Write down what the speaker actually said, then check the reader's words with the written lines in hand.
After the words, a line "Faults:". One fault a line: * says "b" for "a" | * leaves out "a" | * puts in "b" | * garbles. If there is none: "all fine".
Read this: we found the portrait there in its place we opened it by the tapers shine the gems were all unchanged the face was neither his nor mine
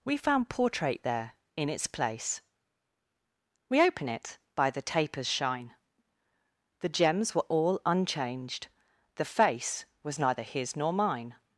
we found portrait there in its place we open it by the tapers shine the gems were all unchanged the face was neither his nor mine
Faults:
* leaves out "the"
* says "open" for "opened"